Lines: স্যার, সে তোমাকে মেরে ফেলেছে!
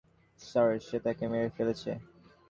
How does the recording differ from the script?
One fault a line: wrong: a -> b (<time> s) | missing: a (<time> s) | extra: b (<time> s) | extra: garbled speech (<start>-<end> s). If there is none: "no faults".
wrong: তোমাকে -> তাকে (1.1 s)